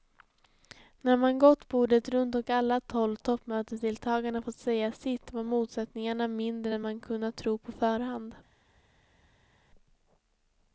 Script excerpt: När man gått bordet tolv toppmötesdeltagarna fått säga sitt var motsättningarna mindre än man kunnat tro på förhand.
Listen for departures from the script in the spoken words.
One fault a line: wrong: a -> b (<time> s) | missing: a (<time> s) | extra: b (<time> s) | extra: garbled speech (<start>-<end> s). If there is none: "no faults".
extra: runt och alla (2.1 s)